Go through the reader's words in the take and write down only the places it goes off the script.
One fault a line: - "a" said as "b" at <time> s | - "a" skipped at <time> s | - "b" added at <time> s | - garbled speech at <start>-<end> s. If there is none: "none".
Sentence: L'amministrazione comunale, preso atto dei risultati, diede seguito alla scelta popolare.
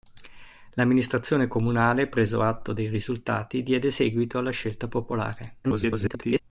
- garbled speech at 5.6-6.4 s